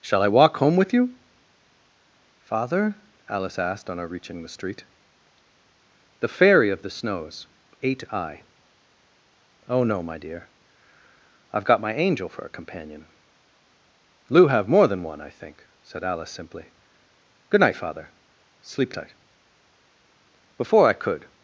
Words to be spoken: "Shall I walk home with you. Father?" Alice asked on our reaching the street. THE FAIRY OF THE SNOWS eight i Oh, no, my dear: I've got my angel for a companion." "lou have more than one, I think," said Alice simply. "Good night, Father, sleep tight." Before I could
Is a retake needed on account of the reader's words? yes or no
no